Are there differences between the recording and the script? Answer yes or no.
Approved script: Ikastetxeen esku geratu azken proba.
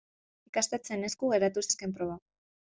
no